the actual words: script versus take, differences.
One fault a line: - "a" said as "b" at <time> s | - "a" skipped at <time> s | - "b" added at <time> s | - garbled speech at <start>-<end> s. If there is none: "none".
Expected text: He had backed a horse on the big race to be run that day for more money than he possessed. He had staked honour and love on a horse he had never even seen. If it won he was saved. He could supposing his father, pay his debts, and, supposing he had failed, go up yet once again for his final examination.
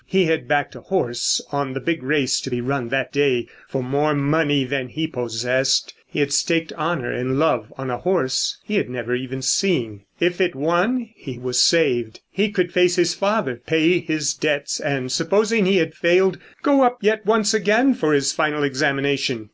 - "supposing" said as "face" at 12.7 s